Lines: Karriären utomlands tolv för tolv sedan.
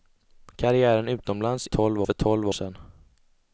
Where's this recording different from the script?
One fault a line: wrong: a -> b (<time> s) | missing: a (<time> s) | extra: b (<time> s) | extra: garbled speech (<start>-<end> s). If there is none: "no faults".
no faults